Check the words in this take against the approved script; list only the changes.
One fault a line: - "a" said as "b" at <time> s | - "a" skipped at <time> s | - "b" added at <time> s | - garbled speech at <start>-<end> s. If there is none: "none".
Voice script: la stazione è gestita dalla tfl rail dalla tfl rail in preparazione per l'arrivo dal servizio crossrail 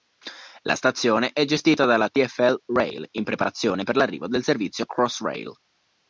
- "dalla tfl rail" skipped at 3.0 s
- "dal" said as "del" at 4.3 s